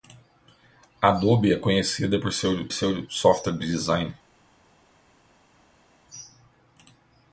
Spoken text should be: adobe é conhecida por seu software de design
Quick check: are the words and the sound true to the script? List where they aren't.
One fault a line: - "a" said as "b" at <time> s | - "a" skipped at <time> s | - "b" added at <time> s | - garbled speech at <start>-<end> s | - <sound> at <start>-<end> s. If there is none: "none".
- "seu" added at 2.7 s